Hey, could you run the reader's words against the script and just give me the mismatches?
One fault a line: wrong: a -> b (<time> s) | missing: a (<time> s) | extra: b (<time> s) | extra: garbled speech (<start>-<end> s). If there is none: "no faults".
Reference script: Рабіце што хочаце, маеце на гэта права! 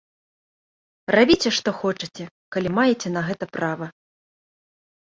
extra: калі (2.6 s)